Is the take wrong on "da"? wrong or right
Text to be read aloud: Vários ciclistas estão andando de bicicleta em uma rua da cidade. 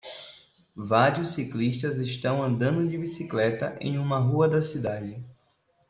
right